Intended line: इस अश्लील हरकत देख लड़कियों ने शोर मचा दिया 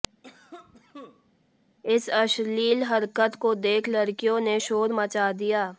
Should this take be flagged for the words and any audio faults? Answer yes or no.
yes